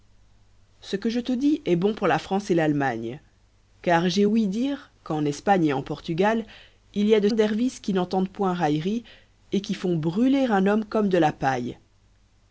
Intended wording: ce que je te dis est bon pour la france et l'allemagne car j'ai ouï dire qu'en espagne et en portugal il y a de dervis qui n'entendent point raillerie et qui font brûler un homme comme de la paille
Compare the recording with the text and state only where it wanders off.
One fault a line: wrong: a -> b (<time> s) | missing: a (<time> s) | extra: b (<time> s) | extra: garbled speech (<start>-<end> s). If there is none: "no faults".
no faults